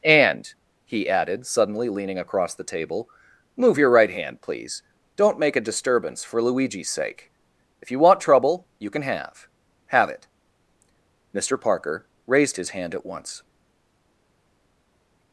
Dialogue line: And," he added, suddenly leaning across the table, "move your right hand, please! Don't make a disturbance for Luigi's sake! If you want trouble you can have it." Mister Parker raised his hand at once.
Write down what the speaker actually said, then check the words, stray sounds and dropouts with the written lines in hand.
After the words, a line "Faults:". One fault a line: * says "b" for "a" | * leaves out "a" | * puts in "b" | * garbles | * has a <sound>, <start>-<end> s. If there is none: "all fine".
And," he added, suddenly leaning across the table, "move your right hand, please! Don't make a disturbance for Luigi's sake! If you want trouble you can have have it." Mister Parker raised his hand at once.
Faults:
* puts in "have"